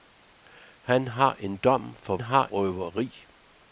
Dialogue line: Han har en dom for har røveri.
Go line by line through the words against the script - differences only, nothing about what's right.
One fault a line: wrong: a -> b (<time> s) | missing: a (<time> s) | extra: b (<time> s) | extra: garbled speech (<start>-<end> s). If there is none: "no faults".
no faults